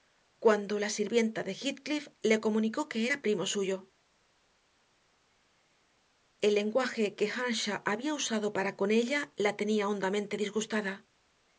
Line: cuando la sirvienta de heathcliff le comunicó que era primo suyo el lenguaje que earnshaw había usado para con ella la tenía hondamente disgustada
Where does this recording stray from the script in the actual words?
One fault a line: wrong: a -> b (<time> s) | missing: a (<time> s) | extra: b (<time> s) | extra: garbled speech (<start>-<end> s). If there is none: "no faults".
no faults